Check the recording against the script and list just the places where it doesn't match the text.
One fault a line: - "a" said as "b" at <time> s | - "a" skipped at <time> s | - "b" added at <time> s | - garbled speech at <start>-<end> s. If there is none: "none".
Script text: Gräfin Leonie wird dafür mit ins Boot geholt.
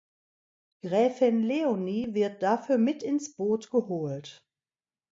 none